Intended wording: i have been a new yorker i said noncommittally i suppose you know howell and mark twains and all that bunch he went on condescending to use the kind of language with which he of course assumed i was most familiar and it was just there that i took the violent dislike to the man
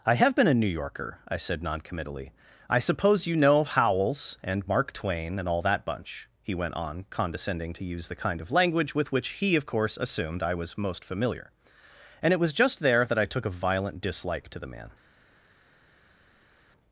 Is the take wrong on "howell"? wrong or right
wrong